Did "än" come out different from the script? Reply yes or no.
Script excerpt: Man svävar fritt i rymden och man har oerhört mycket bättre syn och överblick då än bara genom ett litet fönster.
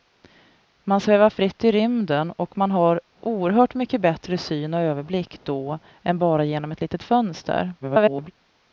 no